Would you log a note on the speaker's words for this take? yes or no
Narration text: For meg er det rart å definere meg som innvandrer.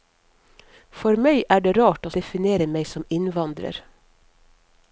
no